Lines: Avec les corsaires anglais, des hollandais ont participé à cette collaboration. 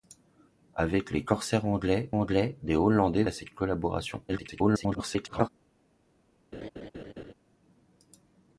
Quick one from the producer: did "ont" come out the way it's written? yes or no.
no